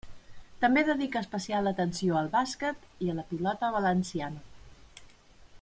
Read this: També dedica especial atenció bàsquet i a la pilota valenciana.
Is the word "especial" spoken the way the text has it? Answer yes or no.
yes